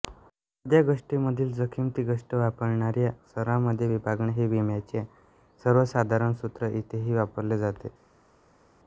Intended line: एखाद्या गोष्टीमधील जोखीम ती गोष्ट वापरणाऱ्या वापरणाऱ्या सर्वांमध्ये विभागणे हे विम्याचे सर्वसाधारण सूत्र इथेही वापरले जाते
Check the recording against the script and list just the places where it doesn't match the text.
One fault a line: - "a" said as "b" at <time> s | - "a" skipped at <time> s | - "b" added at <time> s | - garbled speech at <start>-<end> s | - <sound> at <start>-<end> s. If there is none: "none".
- "वापरणाऱ्या" skipped at 3.1 s